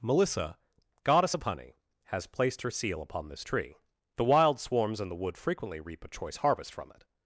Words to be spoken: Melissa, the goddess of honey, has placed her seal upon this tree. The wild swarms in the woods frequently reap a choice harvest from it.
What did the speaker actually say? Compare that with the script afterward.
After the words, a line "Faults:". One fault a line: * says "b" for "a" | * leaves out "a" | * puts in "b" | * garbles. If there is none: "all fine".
Melissa, goddess of honey, has placed her seal upon this tree. The wild swarms in the wood frequently reap a choice harvest from it.
Faults:
* leaves out "the"
* says "wood" for "woods"